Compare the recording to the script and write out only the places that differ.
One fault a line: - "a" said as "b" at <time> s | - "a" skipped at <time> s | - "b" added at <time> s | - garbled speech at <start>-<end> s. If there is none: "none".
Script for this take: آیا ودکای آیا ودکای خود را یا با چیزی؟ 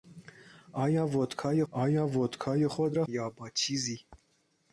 none